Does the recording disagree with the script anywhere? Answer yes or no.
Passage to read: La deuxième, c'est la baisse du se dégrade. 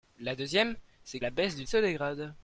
no